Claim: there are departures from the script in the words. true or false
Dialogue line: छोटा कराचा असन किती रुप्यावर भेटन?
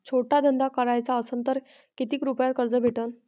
true